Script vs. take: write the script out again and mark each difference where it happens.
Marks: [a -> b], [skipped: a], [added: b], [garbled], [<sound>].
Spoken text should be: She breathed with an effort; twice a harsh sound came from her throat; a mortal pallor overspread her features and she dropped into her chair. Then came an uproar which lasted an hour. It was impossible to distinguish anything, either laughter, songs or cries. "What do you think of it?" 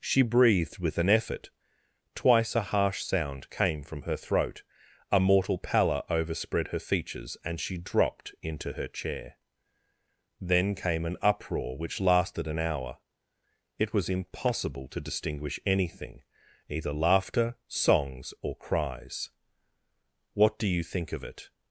She breathed with an effort; twice a harsh sound came from her throat; a mortal pallor overspread her features and she dropped into her chair. Then came an uproar which lasted an hour. It was impossible to distinguish anything, either laughter, songs or cries. "What do you think of it?"